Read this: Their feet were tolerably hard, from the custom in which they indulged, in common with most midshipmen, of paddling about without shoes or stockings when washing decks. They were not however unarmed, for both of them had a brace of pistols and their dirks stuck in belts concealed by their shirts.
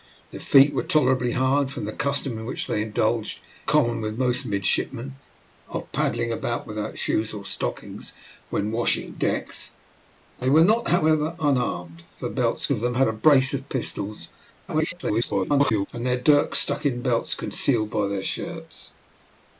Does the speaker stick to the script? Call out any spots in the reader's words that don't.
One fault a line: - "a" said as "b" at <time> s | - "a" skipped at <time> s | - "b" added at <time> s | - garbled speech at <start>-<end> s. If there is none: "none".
- "in" skipped at 3.4 s
- "both" said as "belts" at 12.4 s
- garbled speech at 14.7-15.9 s